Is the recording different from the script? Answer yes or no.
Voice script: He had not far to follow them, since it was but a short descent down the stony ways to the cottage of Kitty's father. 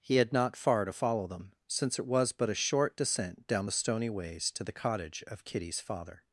no